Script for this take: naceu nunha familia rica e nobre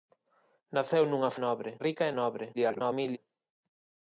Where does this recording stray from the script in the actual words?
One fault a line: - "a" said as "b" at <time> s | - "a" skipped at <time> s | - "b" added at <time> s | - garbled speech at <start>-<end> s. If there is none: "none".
- "familia" said as "nobre" at 1.4 s
- garbled speech at 2.5-3.2 s